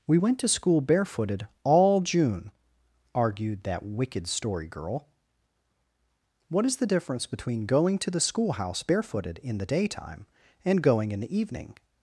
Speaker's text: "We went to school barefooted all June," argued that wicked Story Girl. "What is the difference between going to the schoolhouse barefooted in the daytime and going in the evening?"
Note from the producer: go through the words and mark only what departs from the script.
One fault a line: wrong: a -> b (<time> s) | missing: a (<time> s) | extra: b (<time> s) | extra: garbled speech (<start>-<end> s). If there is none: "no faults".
no faults